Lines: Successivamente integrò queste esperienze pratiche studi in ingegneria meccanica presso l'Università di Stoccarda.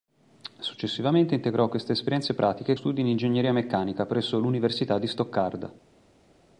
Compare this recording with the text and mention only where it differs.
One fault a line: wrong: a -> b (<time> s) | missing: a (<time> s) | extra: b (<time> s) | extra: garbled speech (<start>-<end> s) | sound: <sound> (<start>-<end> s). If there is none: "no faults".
no faults